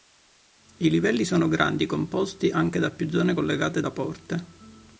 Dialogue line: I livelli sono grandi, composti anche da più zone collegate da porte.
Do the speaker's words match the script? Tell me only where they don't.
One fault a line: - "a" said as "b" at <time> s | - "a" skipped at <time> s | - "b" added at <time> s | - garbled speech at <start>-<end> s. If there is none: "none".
none